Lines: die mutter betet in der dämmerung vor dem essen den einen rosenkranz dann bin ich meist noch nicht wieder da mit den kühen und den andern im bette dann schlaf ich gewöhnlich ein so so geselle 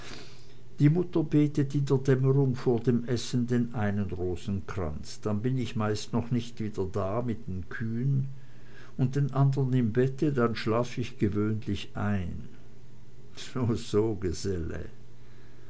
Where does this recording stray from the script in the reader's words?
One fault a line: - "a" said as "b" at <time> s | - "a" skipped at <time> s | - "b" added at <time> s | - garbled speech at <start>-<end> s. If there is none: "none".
none